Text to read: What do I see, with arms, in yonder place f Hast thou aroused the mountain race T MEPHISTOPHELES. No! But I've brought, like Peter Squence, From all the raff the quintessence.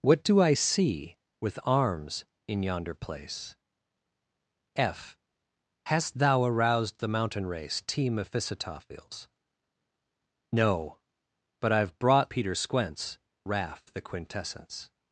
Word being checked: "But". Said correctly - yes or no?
yes